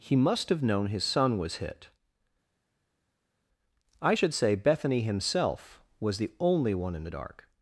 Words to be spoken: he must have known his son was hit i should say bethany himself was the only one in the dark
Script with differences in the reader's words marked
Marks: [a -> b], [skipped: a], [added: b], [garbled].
he must have known his son was hit i should say bethany himself was the only one in the dark